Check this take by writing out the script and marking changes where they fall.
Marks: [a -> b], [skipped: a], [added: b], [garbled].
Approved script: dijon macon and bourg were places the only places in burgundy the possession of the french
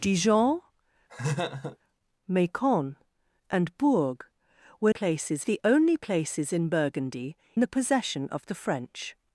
dijon macon and bourg were places the only places in burgundy the possession of the french